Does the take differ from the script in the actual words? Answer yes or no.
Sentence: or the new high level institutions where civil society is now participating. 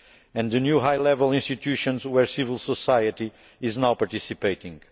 yes